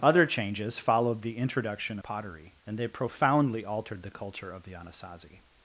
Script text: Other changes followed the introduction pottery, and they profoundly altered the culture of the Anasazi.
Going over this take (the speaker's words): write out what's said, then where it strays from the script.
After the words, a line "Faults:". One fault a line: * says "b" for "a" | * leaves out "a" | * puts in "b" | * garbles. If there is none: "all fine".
Other changes followed the introduction pottery, and they profoundly altered the culture of the Anasazi.
Faults:
all fine